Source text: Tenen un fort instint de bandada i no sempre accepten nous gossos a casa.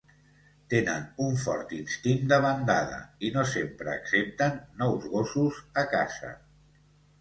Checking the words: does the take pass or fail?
pass